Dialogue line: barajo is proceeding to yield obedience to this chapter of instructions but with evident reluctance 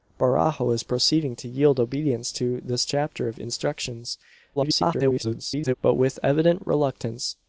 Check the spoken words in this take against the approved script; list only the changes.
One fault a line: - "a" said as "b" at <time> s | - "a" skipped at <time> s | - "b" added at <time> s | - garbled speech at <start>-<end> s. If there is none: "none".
- garbled speech at 4.6-5.7 s